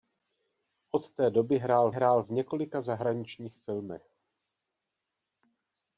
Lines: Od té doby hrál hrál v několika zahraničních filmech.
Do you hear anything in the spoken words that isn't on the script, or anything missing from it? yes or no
no